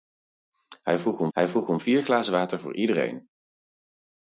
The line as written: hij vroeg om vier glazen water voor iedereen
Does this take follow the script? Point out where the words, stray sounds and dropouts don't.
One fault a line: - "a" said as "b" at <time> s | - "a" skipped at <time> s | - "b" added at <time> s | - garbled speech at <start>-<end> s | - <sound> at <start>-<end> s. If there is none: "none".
- "hij vroeg om" added at 1.3 s